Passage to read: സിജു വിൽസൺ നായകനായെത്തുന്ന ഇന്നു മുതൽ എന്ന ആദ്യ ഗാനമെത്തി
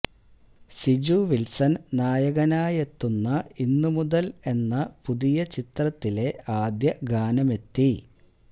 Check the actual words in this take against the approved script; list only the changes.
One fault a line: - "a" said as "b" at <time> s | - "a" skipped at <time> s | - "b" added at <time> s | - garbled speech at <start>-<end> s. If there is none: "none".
- "പുതിയ ചിത്രത്തിലെ" added at 5.0 s